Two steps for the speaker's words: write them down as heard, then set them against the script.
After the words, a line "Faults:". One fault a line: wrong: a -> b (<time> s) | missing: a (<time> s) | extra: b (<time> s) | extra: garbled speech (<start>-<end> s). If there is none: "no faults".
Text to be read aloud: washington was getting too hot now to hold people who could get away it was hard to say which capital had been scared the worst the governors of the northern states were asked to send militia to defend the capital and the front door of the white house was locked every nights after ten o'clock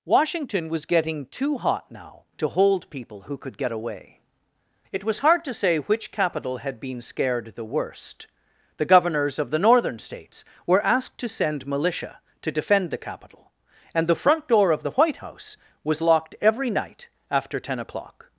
washington was getting too hot now to hold people who could get away it was hard to say which capital had been scared the worst the governors of the northern states were asked to send militia to defend the capital and the front door of the white house was locked every night after ten o'clock
Faults:
wrong: nights -> night (16.7 s)